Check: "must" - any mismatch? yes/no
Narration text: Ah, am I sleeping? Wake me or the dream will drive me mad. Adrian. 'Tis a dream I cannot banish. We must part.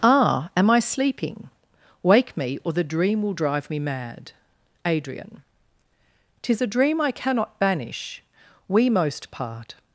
yes